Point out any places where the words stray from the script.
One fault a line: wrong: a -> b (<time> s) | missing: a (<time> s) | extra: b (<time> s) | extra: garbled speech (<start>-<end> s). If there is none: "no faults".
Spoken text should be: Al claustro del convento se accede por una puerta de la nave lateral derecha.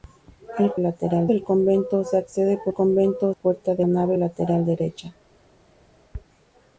wrong: claustro -> lateral (0.8 s)
wrong: una -> convento (2.7 s)
missing: la (3.9 s)